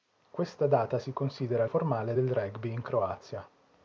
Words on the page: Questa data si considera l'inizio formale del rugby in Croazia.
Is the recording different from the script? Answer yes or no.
yes